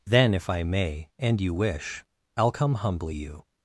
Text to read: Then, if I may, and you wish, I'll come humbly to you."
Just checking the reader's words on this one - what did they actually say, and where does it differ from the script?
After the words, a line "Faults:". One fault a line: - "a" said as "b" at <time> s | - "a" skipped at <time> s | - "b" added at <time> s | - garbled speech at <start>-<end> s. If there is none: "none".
Then, if I may, and you wish, I'll come humbly you."
Faults:
- "to" skipped at 3.1 s